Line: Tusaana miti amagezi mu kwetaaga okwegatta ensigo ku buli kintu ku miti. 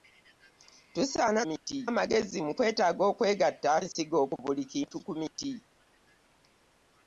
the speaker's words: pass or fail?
pass